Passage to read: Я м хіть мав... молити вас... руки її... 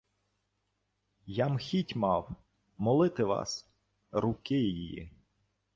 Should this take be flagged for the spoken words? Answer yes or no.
no